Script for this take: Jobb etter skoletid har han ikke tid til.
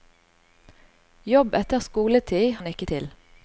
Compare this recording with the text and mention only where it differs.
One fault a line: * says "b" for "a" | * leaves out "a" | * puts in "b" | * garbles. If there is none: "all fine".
* leaves out "har"
* leaves out "tid"